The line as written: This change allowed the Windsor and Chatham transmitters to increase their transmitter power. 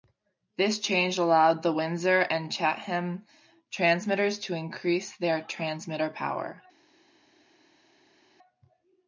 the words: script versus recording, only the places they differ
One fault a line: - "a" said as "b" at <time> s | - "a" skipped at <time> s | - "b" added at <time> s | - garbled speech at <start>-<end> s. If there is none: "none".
none